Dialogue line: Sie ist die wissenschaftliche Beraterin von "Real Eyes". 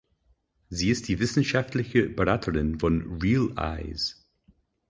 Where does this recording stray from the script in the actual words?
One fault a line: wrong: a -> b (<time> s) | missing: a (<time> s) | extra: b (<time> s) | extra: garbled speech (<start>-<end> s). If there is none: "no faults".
no faults